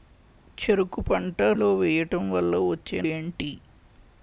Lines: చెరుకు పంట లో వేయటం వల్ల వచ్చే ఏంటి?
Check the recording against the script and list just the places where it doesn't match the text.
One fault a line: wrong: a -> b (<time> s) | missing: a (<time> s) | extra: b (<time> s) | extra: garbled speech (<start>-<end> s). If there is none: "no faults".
no faults